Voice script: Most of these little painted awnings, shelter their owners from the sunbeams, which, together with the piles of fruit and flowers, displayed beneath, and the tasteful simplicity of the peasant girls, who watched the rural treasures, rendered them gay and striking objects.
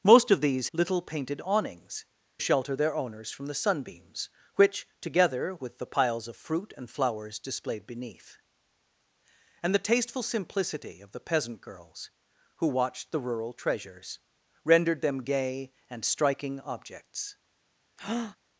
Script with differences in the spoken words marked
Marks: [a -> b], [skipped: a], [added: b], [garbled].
Most of these little painted awnings, shelter their owners from the sunbeams, which, together with the piles of fruit and flowers, displayed beneath, and the tasteful simplicity of the peasant girls, who watched the rural treasures, rendered them gay and striking objects.